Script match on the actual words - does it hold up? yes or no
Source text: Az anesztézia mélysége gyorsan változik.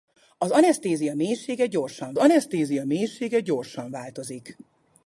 no